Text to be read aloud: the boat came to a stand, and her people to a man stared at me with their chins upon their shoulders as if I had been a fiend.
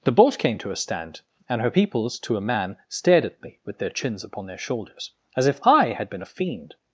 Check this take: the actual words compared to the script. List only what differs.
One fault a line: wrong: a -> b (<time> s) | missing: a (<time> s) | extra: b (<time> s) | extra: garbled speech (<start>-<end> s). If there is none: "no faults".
wrong: people -> peoples (1.7 s)